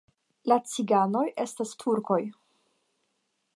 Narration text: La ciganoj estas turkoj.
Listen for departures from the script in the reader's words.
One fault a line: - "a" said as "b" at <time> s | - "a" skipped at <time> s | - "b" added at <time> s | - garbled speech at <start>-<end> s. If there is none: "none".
none